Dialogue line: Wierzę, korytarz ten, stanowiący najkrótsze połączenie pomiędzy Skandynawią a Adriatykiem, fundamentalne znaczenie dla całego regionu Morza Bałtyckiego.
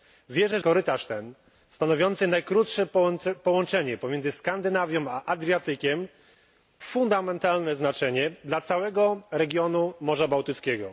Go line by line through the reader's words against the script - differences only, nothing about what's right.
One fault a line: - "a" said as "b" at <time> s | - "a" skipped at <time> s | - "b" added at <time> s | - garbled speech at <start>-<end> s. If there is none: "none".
none